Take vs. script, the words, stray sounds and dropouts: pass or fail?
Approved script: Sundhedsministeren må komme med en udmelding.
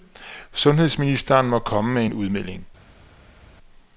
pass